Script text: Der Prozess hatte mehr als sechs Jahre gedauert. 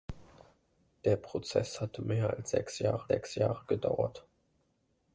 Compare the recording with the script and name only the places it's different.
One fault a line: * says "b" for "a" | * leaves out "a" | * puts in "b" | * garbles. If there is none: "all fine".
* puts in "sechs Jahre"